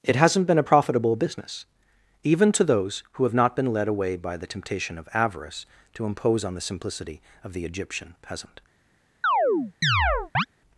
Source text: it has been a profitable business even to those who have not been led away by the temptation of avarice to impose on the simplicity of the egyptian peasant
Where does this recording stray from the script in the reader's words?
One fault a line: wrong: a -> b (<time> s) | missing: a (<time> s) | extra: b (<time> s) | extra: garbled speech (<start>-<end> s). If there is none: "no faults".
wrong: has -> hasn't (0.1 s)